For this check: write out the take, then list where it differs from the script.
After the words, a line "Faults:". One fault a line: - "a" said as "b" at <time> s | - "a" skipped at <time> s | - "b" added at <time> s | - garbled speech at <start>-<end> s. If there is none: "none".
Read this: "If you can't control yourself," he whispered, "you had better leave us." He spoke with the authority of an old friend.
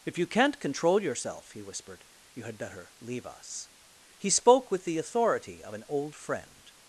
"If you can't control yourself," he whispered, "you had better leave us." He spoke with the authority of an old friend.
Faults:
none